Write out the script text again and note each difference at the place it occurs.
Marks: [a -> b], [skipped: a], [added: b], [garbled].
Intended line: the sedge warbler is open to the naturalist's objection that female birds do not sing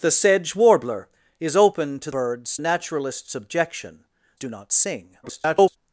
the sedge warbler is open to [the -> birds] naturalist's objection [skipped: that female birds] do not sing [garbled]